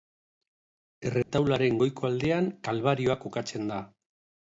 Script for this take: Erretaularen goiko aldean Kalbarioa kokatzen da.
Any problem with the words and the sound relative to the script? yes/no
yes